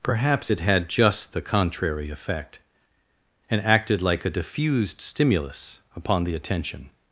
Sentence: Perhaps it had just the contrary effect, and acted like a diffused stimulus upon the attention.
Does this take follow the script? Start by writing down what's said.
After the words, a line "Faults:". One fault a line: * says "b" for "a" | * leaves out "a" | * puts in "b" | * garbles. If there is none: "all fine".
Perhaps it had just the contrary effect, and acted like a diffused stimulus upon the attention.
Faults:
all fine